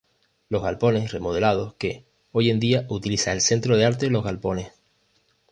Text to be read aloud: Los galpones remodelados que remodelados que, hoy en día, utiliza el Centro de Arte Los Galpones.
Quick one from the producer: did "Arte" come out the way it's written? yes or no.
yes